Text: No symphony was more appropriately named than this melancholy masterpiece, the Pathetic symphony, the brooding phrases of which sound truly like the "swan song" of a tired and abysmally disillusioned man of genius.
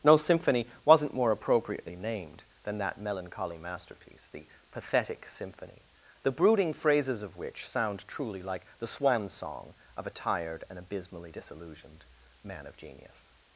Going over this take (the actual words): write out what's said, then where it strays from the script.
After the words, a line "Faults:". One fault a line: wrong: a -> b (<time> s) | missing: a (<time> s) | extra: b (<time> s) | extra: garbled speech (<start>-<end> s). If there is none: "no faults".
No symphony wasn't more appropriately named than that melancholy masterpiece, the Pathetic symphony, the brooding phrases of which sound truly like the "swan song" of a tired and abysmally disillusioned man of genius.
Faults:
wrong: was -> wasn't (0.8 s)
wrong: this -> that (2.8 s)